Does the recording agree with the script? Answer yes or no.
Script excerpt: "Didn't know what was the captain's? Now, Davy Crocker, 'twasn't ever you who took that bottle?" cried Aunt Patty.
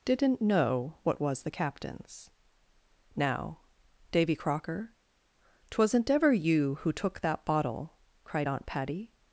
yes